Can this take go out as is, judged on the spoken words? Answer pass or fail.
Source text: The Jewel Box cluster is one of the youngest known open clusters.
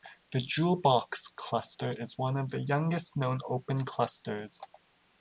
pass